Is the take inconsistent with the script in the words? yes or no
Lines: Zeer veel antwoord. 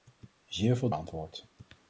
no